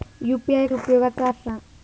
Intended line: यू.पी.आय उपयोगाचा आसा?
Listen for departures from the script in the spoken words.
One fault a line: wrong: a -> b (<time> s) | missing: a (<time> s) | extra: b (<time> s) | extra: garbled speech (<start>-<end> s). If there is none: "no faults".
no faults